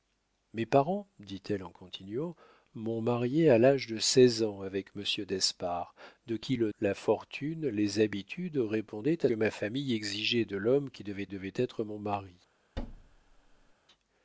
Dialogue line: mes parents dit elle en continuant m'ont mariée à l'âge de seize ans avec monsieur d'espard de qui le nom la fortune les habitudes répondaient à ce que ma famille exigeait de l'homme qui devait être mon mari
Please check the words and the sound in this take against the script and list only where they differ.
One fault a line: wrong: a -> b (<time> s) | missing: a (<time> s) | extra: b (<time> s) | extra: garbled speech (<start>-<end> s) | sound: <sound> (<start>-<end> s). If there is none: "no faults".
missing: nom (6.7 s)
missing: ce que (9.3 s)
extra: devait (11.3 s)
sound: thud (12.8-13.7 s)